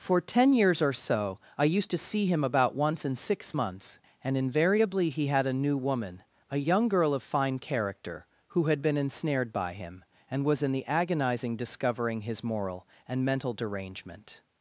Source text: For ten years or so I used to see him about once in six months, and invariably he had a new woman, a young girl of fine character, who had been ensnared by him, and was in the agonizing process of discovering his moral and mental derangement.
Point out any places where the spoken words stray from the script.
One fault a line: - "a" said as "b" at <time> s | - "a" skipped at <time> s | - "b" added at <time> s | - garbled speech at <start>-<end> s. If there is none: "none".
- "process of" skipped at 11.6 s